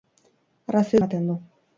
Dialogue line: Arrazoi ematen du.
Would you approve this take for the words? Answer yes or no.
yes